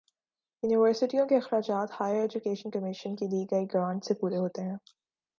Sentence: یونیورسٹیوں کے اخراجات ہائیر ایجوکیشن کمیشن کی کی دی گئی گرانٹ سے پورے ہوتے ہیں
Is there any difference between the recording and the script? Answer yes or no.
yes